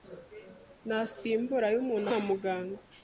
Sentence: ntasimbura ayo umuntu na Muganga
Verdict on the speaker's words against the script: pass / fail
pass